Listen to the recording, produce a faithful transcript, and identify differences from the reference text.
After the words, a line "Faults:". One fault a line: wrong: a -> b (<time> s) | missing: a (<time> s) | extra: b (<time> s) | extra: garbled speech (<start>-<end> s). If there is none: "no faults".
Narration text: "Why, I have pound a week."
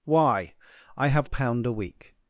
"Why, I have pound a week."
Faults:
no faults